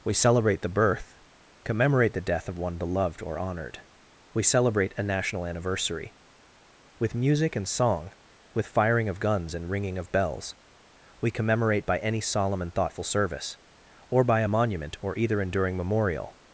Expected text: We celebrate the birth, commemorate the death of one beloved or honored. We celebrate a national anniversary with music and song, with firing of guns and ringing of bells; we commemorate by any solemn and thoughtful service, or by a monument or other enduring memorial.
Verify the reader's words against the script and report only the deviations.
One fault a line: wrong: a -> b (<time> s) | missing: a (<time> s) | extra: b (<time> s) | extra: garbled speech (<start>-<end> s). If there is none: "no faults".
wrong: other -> either (15.2 s)